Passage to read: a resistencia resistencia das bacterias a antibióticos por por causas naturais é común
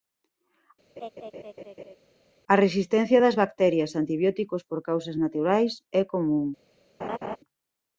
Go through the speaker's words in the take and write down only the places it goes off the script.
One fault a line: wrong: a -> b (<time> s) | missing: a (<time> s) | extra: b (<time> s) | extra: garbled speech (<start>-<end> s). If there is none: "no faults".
missing: resistencia (3.2 s)
missing: por (4.8 s)